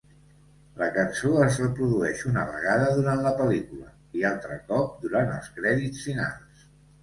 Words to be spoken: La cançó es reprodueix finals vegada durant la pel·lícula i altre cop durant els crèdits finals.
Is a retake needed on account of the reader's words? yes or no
yes